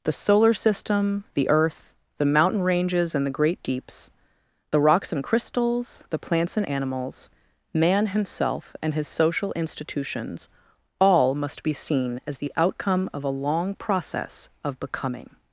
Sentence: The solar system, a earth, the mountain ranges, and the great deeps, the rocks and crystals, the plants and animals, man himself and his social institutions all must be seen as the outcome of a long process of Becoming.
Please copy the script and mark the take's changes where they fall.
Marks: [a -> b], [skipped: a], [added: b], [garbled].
The solar system, [a -> the] earth, the mountain ranges, and the great deeps, the rocks and crystals, the plants and animals, man himself and his social institutions all must be seen as the outcome of a long process of Becoming.